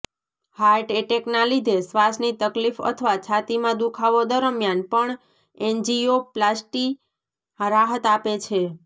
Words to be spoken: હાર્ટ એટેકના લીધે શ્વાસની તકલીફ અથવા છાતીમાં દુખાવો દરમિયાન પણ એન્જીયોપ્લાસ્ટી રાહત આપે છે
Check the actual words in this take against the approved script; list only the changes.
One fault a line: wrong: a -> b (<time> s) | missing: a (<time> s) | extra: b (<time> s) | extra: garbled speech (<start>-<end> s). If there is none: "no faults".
no faults